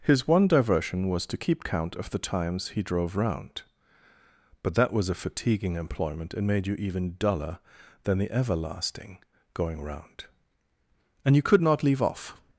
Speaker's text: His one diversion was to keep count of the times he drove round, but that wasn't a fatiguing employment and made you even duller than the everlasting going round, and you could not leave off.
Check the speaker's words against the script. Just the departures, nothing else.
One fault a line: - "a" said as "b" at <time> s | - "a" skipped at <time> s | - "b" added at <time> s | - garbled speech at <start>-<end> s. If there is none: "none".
- "wasn't" said as "was" at 4.9 s